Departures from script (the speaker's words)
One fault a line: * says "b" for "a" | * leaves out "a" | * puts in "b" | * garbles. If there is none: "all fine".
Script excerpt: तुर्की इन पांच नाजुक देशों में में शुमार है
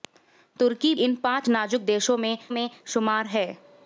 all fine